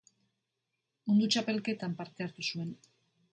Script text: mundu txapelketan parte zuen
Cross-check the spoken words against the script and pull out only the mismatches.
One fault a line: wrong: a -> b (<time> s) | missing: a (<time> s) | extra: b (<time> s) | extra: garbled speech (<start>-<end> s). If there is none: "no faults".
extra: hartu (2.3 s)